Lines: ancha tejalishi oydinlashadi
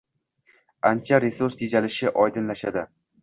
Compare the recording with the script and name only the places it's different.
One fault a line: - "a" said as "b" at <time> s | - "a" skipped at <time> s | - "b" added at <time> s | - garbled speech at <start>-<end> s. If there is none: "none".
- "resurs" added at 1.2 s